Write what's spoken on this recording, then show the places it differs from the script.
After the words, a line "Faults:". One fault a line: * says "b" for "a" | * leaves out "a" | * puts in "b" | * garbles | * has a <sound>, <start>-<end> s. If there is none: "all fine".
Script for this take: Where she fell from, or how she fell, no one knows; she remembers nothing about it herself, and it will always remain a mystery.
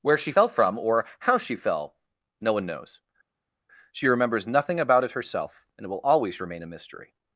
Where she fell from, or how she fell, no one knows; she remembers nothing about it herself, and it will always remain a mystery.
Faults:
all fine